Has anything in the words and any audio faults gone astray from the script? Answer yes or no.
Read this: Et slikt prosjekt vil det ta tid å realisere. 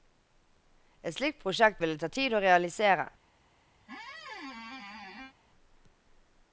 yes